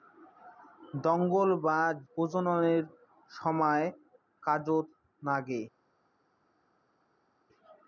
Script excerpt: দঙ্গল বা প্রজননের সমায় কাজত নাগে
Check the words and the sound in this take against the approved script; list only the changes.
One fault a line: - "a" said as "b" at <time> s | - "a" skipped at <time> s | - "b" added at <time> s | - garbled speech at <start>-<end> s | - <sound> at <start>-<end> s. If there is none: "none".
none